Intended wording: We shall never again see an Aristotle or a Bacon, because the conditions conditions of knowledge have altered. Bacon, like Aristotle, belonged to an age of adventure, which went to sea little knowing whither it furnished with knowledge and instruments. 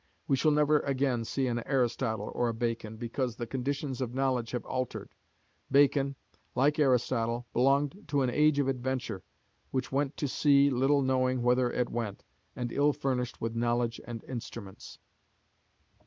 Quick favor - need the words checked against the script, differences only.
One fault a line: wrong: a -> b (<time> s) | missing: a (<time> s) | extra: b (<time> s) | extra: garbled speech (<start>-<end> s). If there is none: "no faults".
missing: conditions (4.0 s)
extra: went and ill (11.9 s)